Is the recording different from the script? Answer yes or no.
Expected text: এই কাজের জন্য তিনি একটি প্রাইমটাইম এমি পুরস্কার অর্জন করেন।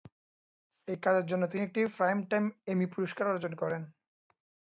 no